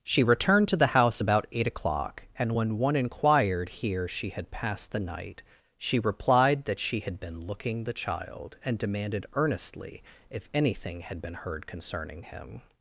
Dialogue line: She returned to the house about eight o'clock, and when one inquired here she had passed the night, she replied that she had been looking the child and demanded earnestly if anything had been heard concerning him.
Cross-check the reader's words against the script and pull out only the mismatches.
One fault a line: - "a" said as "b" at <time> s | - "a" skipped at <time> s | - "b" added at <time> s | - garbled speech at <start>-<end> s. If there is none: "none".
none